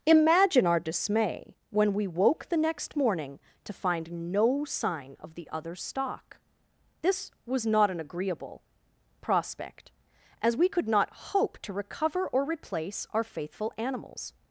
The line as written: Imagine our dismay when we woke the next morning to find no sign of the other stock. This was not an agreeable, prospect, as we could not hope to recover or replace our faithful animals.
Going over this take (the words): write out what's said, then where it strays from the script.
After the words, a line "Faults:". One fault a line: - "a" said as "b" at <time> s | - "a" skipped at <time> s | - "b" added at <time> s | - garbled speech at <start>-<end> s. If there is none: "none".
Imagine our dismay when we woke the next morning to find no sign of the other stock. This was not an agreeable, prospect, as we could not hope to recover or replace our faithful animals.
Faults:
none